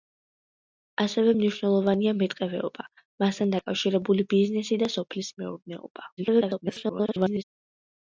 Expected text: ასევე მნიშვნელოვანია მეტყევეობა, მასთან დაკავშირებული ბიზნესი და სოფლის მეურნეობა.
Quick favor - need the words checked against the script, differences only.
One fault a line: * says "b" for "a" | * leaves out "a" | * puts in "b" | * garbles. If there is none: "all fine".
* garbles